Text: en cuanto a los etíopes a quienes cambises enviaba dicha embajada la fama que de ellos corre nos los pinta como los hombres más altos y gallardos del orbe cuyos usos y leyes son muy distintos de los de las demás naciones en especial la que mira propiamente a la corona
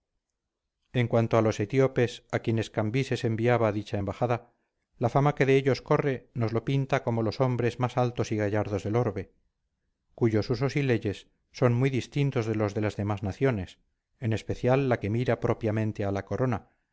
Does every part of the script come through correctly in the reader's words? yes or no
yes